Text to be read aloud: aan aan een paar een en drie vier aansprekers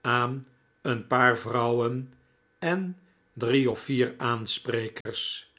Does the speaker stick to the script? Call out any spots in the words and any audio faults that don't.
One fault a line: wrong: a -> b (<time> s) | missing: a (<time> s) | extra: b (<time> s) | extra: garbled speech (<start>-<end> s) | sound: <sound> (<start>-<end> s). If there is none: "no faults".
missing: aan (0.5 s)
wrong: een -> vrouwen (1.4 s)
extra: of (3.7 s)
sound: dropout (5.0-5.1 s)